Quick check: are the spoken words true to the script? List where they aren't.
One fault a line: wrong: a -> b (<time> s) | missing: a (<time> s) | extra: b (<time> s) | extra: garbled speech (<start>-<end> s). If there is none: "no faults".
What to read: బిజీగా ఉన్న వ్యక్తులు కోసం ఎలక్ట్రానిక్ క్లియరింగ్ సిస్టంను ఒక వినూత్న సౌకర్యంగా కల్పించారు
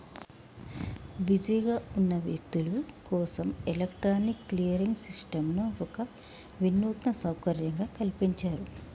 no faults